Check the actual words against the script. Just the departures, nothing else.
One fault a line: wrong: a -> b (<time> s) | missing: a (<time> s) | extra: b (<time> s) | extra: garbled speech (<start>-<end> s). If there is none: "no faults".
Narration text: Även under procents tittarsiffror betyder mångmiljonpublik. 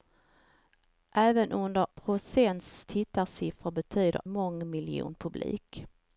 no faults